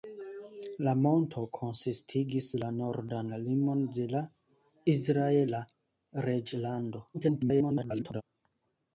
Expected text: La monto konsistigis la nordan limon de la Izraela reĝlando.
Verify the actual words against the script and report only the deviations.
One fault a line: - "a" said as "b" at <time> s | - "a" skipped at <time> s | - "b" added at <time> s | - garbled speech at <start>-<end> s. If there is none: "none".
- garbled speech at 7.1-8.2 s